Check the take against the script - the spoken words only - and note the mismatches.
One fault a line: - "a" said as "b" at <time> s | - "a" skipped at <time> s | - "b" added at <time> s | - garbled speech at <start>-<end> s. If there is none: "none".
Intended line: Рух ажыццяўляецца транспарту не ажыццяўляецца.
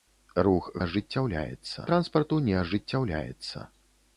none